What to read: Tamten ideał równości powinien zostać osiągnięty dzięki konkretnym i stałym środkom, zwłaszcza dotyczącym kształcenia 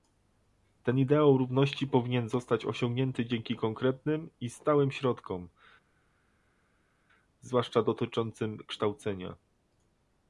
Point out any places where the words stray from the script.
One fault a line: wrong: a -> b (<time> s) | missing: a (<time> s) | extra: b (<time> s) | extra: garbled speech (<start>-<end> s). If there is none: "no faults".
wrong: Tamten -> Ten (0.8 s)